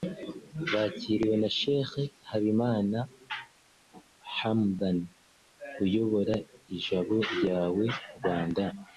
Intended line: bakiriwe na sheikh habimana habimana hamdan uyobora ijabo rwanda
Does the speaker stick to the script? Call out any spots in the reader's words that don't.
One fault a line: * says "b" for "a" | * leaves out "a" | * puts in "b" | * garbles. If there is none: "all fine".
* leaves out "habimana"
* puts in "ryawe"